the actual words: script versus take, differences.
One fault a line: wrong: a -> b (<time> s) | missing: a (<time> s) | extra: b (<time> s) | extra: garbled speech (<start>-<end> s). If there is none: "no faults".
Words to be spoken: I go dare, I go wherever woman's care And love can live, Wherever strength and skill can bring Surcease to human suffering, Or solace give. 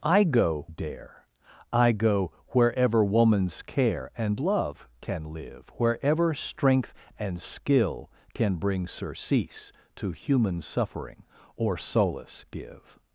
no faults